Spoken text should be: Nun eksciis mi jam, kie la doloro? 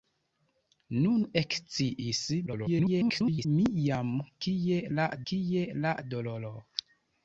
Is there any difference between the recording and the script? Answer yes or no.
yes